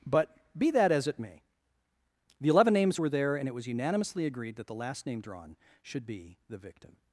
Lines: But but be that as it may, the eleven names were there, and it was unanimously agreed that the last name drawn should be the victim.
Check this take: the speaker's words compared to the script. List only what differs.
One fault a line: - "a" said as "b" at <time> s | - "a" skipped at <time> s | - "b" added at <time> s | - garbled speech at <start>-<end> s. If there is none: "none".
- "but" skipped at 0.3 s